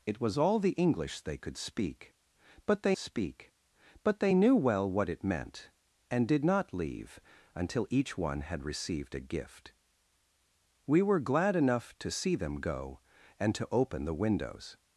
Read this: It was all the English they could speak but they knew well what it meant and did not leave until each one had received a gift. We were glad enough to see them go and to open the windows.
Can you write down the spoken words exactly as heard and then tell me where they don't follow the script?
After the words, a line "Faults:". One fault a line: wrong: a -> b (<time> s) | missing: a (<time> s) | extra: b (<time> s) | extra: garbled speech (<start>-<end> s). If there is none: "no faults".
It was all the English they could speak but they speak but they knew well what it meant and did not leave until each one had received a gift. We were glad enough to see them go and to open the windows.
Faults:
extra: speak but they (3.0 s)